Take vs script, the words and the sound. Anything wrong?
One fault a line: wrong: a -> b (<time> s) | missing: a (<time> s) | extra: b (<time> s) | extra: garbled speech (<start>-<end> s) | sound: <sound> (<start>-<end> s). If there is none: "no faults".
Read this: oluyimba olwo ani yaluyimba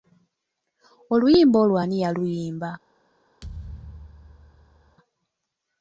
sound: thud (3.4-5.0 s)